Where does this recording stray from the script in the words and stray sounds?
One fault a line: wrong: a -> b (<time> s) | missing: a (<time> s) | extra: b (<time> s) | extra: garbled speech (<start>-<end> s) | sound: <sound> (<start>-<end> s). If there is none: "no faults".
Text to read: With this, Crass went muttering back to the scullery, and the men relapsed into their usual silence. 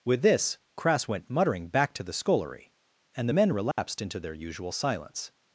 sound: dropout (3.7-3.8 s)